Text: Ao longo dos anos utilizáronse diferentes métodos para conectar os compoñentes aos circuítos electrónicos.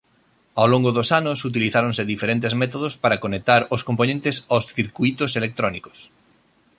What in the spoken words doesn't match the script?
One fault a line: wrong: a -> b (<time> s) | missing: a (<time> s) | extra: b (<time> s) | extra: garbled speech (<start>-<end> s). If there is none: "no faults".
no faults